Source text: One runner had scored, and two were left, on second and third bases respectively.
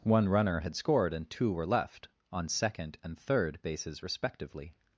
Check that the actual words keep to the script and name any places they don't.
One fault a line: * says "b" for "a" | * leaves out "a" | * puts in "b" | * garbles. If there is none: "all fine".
all fine